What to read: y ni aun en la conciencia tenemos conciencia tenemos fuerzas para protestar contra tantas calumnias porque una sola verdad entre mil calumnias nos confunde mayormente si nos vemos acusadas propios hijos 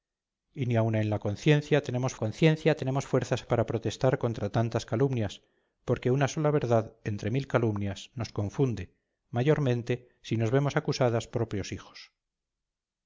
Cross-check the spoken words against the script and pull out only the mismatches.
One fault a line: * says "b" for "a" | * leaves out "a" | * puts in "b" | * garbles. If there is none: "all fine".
all fine